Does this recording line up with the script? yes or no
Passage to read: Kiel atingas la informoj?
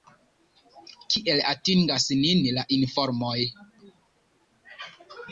no